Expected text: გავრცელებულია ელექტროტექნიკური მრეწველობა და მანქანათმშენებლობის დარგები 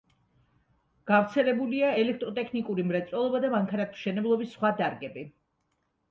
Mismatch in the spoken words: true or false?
true